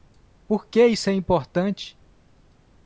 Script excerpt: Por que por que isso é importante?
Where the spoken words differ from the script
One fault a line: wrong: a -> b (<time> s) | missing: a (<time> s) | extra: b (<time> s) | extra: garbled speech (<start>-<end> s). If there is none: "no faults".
missing: por que (0.8 s)